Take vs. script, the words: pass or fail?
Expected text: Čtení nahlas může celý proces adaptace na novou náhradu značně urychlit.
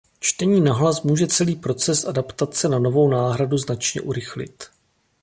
pass